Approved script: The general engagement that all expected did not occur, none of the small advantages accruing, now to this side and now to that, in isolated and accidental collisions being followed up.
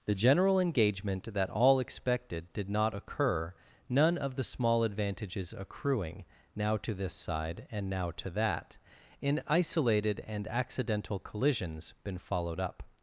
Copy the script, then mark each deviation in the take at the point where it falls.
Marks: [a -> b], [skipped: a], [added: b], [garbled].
The general engagement that all expected did not occur, none of the small advantages accruing, now to this side and now to that, in isolated and accidental collisions [being -> been] followed up.